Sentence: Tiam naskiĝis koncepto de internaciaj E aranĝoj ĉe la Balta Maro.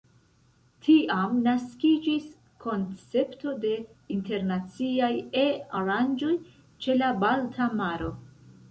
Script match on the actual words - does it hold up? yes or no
yes